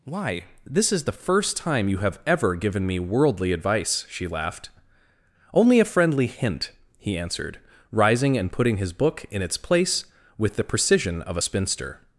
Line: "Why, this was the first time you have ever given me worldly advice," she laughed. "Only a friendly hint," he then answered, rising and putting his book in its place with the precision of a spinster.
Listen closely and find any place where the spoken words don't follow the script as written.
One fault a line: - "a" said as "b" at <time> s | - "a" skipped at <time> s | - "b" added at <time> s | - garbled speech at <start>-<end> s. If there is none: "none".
- "was" said as "is" at 0.9 s
- "then" skipped at 7.2 s